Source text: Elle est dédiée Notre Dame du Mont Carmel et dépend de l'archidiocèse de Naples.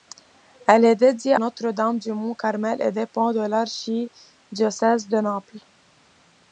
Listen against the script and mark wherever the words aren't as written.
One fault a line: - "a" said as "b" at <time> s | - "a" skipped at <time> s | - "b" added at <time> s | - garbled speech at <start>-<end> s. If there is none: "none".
none